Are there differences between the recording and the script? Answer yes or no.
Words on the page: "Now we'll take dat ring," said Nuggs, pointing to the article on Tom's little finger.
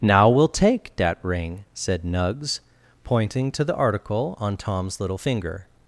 no